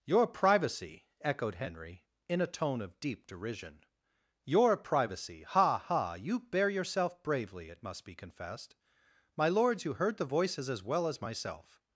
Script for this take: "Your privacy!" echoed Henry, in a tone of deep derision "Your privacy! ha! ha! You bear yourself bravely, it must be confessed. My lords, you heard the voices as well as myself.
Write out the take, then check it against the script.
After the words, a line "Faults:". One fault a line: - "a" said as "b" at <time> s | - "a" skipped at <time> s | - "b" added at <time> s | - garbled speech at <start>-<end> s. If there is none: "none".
"Your privacy!" echoed Henry, in a tone of deep derision "Your privacy! ha! ha! You bear yourself bravely, it must be confessed. My lords, you heard the voices as well as myself.
Faults:
none